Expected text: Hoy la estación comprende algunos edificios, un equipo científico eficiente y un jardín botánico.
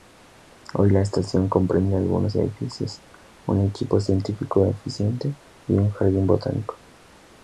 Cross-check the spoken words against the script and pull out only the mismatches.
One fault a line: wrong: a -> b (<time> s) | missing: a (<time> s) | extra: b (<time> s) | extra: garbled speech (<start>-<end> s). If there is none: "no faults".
no faults